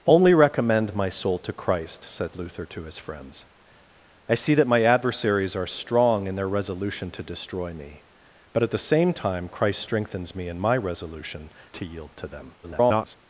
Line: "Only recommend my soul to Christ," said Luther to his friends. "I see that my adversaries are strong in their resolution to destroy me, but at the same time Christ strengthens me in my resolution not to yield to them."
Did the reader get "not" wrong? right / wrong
wrong